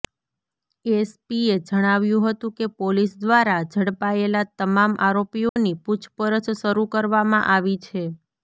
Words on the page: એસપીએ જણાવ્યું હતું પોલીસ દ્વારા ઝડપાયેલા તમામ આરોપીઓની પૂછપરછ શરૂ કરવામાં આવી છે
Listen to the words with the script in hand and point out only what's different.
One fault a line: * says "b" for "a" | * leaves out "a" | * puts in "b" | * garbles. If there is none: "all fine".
* puts in "કે"